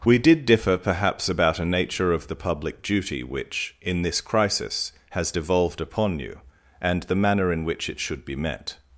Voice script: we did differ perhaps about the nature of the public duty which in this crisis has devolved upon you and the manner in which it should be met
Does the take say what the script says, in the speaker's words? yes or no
no